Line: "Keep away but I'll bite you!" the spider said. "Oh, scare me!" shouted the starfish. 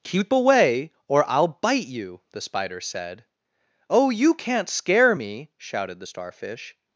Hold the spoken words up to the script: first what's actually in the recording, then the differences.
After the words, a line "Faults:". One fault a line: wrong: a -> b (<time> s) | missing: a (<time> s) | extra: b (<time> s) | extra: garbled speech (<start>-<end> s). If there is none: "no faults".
"Keep away or I'll bite you!" the spider said. "Oh, you can't scare me!" shouted the starfish.
Faults:
wrong: but -> or (1.1 s)
extra: you can't (4.1 s)